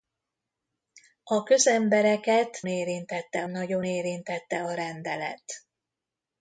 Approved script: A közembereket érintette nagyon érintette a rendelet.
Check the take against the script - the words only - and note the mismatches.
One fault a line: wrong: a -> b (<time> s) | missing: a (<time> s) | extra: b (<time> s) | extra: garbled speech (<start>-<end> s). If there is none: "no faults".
no faults